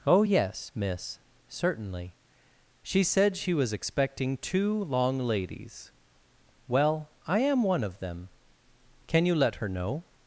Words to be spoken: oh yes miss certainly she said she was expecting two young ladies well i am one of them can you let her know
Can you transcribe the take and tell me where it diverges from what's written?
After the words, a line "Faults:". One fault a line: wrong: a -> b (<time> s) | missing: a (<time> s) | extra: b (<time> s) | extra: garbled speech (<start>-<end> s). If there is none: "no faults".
oh yes miss certainly she said she was expecting two long ladies well i am one of them can you let her know
Faults:
wrong: young -> long (4.8 s)